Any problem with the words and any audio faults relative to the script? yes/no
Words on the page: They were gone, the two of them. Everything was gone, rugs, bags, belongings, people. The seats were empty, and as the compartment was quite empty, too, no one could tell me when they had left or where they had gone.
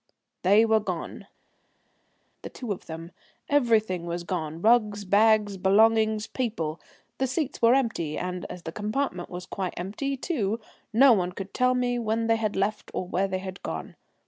no